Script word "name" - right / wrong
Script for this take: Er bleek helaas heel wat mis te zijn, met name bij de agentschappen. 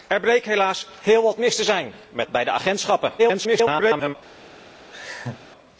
wrong